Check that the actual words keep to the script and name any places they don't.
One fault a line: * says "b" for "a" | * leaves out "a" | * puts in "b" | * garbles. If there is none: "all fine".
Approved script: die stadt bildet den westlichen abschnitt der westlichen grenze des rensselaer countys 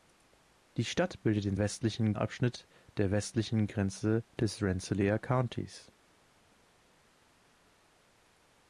all fine